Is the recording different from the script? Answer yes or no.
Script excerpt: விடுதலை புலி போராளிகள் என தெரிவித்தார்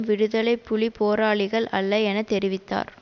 yes